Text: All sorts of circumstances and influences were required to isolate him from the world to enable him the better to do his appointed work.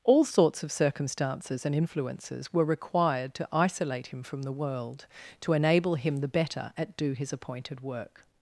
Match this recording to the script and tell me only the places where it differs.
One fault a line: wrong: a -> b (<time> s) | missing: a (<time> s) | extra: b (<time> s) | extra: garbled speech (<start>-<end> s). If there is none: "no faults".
wrong: to -> at (6.8 s)